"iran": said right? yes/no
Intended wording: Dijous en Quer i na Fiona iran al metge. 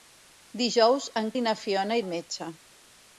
no